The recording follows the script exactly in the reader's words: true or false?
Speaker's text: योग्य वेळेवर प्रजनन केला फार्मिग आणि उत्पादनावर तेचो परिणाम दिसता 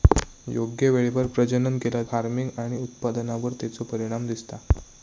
true